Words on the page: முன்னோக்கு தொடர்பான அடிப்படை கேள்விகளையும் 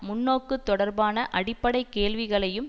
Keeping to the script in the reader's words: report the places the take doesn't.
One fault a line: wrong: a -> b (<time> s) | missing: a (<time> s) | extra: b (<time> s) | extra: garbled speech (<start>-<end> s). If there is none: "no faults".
no faults